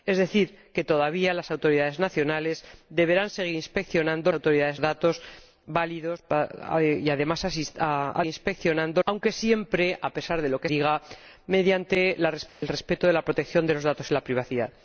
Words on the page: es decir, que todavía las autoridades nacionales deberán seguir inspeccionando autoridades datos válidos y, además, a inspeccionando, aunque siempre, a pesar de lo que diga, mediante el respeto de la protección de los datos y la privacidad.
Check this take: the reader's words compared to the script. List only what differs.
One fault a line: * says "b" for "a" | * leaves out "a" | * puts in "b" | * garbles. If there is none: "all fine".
all fine